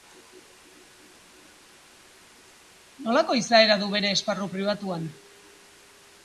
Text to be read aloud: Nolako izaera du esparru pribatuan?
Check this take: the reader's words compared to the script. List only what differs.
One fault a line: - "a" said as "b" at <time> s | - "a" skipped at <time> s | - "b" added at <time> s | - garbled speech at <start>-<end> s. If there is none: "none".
- "bere" added at 3.9 s